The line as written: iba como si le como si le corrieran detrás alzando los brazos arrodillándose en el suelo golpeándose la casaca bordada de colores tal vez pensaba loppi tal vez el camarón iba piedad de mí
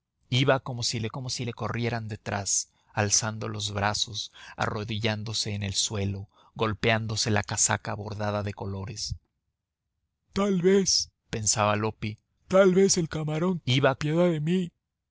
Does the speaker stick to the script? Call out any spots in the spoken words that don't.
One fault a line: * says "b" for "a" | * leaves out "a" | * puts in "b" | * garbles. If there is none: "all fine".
all fine